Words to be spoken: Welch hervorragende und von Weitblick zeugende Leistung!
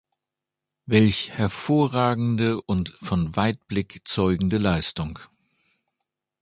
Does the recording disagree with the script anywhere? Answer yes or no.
no